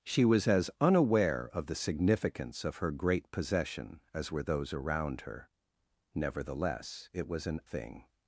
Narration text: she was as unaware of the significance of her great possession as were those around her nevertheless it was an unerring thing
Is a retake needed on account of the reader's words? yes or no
yes